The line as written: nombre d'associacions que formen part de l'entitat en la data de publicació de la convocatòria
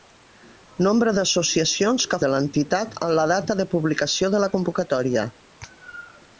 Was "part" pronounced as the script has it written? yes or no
no